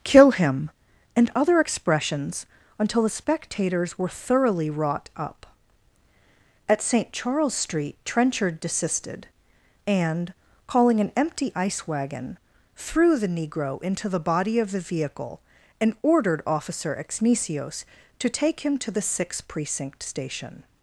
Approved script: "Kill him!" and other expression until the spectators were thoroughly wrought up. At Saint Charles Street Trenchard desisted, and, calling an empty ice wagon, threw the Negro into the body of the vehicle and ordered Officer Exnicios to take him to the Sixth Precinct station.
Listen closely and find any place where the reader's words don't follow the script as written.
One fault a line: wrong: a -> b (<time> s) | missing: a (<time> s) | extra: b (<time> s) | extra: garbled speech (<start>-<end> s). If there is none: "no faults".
wrong: expression -> expressions (1.6 s)